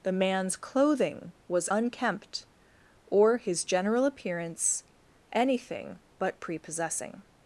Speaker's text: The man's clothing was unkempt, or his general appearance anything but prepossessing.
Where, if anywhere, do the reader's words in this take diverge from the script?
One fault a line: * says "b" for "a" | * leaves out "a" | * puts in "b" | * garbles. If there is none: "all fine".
all fine